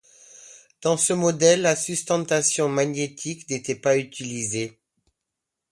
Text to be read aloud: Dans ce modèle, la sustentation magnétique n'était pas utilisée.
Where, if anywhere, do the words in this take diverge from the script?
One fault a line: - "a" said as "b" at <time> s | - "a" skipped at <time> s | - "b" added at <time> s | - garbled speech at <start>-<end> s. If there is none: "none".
none